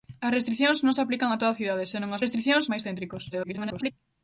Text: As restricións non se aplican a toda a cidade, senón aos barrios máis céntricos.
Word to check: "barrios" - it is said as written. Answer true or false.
false